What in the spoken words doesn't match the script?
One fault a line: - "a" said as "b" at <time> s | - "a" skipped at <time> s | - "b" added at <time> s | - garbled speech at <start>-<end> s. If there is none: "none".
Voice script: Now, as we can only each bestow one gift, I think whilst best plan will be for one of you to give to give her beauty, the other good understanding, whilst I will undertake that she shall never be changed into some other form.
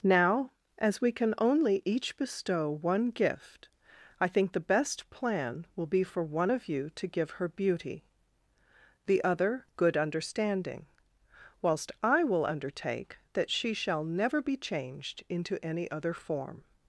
- "whilst" said as "the" at 4.5 s
- "to give" skipped at 7.3 s
- "some" said as "any" at 15.6 s